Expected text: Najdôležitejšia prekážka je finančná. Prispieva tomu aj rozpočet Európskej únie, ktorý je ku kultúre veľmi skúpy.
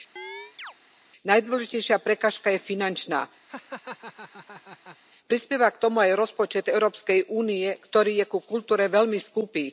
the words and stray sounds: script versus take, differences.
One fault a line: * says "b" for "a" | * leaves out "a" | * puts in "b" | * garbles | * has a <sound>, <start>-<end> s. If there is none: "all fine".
* has a chirp, 0.2-0.7 s
* has a laugh, 3.5-5.0 s
* puts in "k"